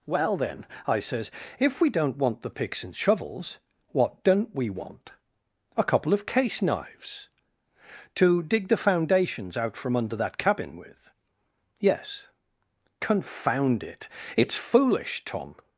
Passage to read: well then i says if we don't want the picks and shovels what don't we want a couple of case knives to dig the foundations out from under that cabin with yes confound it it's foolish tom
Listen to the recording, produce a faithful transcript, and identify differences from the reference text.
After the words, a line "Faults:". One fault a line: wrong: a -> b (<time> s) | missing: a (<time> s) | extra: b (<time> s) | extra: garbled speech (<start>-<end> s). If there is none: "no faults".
well then i says if we don't want the picks and shovels what don't we want a couple of case knives to dig the foundations out from under that cabin with yes confound it it's foolish tom
Faults:
no faults